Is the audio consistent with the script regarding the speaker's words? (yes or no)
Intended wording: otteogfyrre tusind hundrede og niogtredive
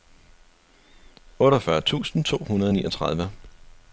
no